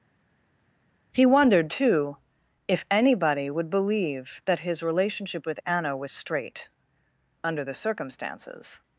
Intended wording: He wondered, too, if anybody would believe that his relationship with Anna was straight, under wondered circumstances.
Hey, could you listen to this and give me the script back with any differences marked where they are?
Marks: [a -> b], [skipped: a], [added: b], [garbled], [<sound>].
He wondered, too, if anybody would believe that his relationship with Anna was straight, under [wondered -> the] circumstances.